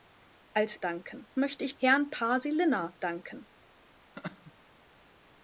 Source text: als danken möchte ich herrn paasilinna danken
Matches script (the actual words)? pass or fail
pass